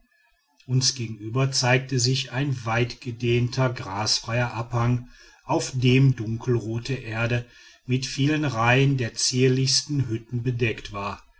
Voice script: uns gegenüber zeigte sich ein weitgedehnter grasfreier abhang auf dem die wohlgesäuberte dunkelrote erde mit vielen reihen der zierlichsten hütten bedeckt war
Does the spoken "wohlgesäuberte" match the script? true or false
false